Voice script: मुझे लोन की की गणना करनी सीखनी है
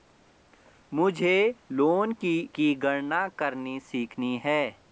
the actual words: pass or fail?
pass